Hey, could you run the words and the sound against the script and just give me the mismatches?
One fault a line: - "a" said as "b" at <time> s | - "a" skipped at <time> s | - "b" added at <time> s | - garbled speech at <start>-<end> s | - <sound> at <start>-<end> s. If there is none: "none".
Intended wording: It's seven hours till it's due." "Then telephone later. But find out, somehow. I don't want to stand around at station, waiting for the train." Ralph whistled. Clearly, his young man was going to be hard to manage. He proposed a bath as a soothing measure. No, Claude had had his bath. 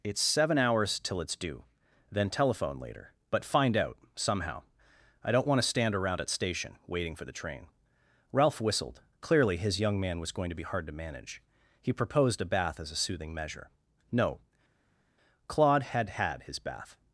none